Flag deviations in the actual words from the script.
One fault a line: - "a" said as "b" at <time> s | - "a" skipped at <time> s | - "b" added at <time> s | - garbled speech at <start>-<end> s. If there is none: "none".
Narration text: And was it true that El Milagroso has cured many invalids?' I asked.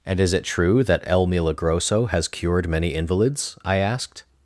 - "was" said as "is" at 0.2 s